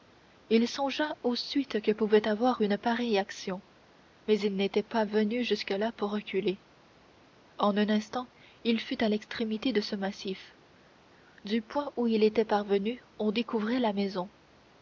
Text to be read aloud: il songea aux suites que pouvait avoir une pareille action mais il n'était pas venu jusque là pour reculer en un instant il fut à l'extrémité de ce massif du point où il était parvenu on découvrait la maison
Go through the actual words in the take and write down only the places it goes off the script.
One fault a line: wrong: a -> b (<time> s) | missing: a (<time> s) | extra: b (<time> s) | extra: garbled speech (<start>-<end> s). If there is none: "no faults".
no faults